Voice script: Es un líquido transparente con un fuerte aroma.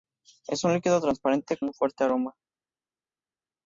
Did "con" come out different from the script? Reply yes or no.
yes